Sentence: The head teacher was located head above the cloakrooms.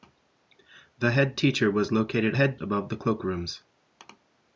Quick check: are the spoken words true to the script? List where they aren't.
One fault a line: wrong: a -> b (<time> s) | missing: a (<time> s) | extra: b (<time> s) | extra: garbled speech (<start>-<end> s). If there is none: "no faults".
no faults